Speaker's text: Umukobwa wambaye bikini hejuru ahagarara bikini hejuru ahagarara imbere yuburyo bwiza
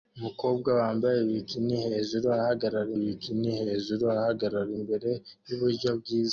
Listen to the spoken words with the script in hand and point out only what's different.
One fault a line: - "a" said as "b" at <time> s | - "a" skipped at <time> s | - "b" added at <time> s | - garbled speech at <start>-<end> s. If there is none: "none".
none